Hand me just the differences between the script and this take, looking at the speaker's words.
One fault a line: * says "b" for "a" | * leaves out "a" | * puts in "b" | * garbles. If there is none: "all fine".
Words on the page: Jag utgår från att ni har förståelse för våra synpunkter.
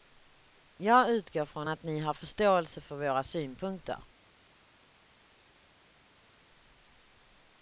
all fine